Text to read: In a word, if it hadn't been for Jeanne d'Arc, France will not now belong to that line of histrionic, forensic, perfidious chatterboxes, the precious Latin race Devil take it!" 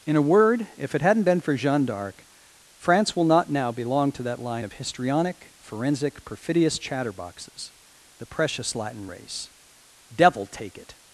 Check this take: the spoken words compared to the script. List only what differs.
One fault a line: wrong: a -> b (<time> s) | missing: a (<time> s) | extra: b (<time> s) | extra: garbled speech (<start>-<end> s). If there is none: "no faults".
no faults